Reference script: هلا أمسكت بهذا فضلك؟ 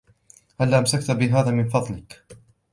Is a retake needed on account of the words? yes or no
yes